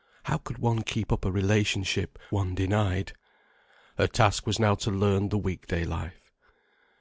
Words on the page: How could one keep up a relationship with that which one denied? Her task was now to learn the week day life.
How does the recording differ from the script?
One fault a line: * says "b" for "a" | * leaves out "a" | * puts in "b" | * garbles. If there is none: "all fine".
* leaves out "with that which"